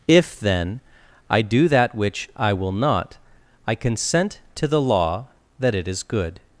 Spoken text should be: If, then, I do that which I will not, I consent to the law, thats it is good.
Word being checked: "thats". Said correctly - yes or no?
no